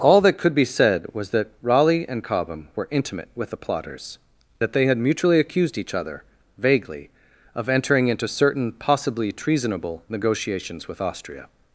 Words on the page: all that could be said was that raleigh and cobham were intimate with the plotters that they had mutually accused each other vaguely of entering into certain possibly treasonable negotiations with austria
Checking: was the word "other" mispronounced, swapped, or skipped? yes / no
no